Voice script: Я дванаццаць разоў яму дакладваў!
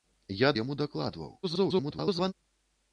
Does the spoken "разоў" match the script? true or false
false